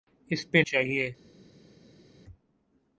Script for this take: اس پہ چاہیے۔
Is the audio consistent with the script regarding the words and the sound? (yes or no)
yes